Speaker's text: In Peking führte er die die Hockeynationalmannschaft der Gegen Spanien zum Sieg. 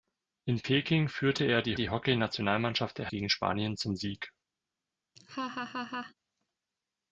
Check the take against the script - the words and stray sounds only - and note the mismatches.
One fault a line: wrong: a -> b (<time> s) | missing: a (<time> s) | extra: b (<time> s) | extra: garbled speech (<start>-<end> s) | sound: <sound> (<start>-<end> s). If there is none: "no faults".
sound: laugh (5.2-6.1 s)